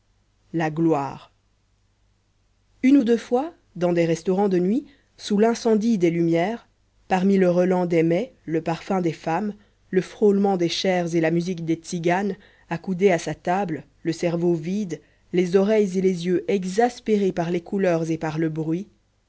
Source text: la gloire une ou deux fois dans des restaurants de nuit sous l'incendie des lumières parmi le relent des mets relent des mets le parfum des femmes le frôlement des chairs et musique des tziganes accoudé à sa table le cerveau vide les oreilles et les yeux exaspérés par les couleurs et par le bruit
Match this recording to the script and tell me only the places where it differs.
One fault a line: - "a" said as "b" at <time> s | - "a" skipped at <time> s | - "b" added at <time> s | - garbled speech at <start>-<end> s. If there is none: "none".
- "relent des mets" skipped at 8.3 s
- "la" added at 11.2 s